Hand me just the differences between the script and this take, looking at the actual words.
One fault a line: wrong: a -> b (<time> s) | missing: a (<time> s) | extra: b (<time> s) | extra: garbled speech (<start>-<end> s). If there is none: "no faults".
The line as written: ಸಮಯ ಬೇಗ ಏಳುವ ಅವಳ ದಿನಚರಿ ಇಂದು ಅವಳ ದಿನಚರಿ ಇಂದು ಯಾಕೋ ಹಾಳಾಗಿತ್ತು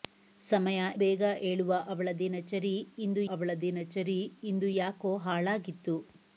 no faults